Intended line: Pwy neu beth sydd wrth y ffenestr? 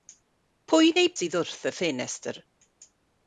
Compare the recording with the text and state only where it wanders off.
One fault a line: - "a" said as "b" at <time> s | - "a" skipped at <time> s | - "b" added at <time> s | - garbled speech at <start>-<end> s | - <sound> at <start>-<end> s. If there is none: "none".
- "beth" skipped at 1.1 s